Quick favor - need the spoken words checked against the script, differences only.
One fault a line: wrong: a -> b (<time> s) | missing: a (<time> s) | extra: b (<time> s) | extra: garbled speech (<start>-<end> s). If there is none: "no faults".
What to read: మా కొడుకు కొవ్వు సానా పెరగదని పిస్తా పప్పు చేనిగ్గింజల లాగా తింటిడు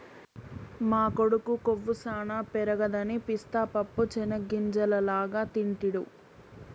no faults